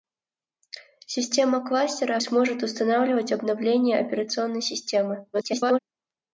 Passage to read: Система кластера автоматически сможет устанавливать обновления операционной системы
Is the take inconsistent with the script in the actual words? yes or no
yes